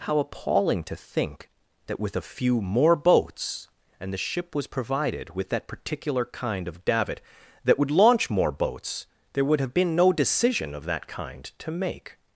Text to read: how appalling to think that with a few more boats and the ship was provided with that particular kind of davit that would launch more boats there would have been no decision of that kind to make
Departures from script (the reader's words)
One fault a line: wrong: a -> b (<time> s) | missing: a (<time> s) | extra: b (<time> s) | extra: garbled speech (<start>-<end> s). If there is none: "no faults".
no faults